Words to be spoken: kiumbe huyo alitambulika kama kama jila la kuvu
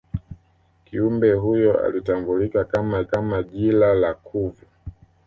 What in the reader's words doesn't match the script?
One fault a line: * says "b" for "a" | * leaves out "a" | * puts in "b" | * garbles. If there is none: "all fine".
all fine